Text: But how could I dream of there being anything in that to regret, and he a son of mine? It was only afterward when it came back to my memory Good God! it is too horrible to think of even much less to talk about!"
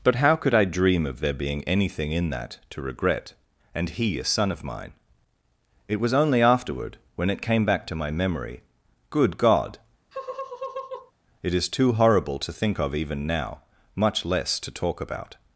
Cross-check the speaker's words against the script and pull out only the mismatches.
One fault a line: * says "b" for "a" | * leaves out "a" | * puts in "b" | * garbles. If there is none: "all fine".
* puts in "now"